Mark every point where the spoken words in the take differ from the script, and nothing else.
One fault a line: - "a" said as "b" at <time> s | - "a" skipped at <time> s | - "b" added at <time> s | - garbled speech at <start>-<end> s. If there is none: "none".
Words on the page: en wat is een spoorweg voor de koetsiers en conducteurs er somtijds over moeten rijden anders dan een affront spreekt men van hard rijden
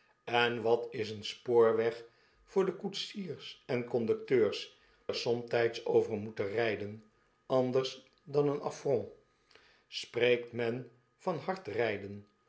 none